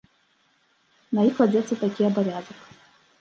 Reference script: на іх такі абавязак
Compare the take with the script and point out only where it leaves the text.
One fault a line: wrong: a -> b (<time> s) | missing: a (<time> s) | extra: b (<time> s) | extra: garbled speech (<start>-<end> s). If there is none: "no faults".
extra: кладзецца (1.4 s)